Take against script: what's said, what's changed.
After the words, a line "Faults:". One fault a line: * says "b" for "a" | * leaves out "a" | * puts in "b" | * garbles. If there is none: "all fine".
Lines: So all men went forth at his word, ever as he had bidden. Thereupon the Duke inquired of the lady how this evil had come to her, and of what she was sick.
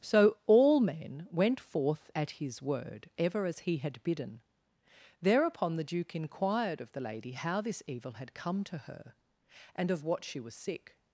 So all men went forth at his word, ever as he had bidden. Thereupon the Duke inquired of the lady how this evil had come to her, and of what she was sick.
Faults:
all fine